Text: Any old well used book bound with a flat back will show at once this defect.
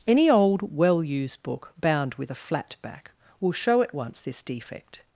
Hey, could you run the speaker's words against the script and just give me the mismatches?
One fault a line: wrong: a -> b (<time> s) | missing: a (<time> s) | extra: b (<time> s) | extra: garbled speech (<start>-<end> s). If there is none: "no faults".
no faults